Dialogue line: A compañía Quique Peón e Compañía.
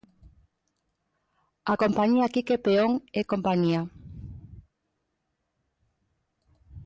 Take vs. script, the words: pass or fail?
pass